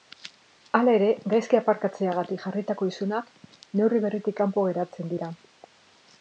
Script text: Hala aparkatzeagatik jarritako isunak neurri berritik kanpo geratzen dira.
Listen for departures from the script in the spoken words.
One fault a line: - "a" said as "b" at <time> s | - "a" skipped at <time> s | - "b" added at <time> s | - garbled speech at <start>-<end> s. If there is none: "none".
- "ere gaizki" added at 1.0 s